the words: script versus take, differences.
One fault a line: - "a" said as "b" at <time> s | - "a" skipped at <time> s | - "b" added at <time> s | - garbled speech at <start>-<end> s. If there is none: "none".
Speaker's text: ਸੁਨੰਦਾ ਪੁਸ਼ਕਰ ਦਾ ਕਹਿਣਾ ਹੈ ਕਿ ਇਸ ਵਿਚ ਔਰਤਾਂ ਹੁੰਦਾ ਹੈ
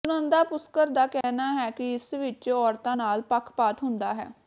- "ਨਾਲ ਪੱਖਪਾਤ" added at 2.9 s